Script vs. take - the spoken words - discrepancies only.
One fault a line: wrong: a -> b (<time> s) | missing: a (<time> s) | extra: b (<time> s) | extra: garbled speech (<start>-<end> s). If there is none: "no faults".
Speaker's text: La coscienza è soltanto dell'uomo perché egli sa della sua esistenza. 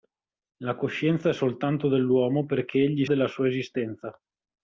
missing: sa (3.0 s)